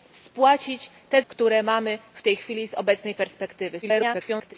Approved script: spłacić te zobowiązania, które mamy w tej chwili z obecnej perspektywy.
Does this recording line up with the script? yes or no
no